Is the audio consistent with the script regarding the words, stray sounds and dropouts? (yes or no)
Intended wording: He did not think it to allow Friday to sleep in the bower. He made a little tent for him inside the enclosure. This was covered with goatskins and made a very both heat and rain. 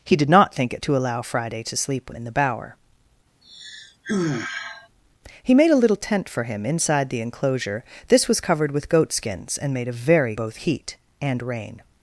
no